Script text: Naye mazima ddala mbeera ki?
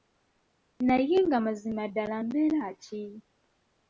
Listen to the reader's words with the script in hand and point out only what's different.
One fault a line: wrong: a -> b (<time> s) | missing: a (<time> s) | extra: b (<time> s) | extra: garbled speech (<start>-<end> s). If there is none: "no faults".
extra: nga (1.2 s)